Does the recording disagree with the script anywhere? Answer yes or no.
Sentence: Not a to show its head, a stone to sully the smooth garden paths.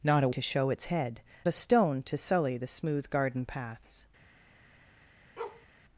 no